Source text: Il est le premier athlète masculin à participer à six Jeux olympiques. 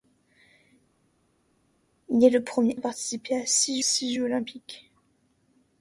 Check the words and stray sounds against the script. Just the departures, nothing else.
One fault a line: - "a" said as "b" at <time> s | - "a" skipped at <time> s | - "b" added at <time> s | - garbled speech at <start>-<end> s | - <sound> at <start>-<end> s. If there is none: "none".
- "athlète masculin" skipped at 2.8 s
- "six" added at 3.8 s